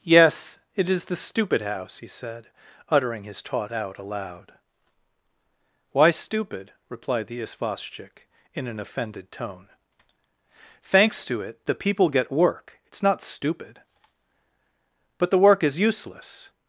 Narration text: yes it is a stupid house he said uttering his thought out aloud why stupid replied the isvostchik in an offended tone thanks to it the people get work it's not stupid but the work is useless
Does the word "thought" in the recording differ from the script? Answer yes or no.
yes